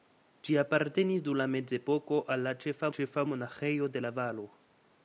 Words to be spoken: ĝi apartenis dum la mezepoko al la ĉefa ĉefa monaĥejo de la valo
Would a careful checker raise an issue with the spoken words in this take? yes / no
no